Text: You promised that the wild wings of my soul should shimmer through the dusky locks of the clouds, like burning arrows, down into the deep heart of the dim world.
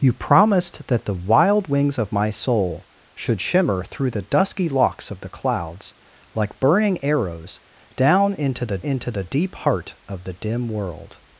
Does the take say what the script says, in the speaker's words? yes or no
no